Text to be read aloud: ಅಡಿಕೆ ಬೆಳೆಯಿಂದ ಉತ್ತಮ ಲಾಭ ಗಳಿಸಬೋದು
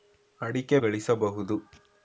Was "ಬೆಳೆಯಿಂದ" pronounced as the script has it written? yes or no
no